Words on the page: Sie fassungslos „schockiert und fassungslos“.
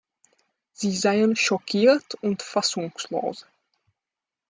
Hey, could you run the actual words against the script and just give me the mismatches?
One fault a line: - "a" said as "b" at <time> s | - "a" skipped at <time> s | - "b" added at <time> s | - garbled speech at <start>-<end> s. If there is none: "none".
- "fassungslos" said as "seien" at 0.9 s